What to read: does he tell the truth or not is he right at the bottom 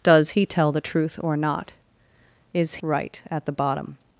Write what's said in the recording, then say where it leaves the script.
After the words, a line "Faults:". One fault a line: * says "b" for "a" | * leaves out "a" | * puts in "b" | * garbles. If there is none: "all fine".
does he tell the truth or not is right at the bottom
Faults:
* leaves out "he"